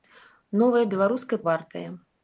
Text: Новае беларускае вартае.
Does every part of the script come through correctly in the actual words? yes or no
yes